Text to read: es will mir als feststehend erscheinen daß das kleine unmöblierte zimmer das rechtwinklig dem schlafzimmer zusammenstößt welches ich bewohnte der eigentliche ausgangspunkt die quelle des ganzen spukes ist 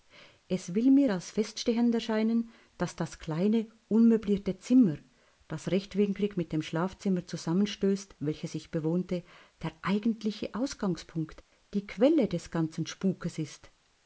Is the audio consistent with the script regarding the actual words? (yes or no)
no